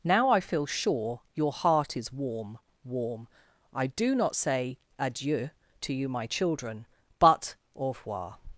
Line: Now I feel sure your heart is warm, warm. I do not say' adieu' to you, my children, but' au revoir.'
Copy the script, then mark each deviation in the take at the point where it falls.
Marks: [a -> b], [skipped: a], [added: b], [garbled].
Now I feel sure your heart is warm, warm. I do not say' adieu' to you, my children, but' au revoir.'